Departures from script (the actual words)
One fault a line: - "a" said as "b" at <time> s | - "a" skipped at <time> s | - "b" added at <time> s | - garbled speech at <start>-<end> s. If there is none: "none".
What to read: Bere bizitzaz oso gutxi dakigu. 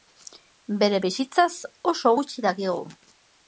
none